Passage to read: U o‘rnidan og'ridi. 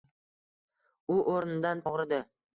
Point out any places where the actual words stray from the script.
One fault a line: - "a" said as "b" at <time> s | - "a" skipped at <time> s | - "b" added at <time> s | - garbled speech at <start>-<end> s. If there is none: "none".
none